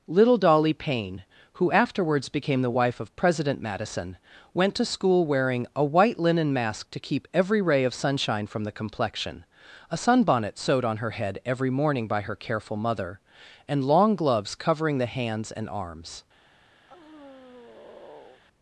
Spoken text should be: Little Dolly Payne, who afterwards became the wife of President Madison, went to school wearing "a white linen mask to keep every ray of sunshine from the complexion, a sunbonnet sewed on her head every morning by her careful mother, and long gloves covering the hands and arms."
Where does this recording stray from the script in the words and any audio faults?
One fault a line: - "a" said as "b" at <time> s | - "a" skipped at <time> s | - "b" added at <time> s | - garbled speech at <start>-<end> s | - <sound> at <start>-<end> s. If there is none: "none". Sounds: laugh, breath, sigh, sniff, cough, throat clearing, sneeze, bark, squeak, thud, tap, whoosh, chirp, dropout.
- sigh at 16.9-18.4 s